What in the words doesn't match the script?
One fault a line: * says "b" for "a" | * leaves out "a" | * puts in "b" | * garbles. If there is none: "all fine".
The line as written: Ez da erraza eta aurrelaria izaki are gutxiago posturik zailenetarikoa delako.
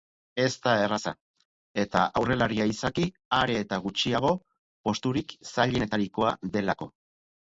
* puts in "eta"